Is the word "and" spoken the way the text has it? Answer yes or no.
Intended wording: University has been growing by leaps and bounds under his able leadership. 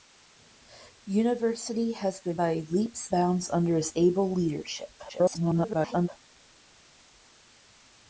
no